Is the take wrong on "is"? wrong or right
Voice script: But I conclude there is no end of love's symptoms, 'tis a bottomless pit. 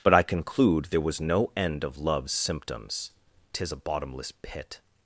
wrong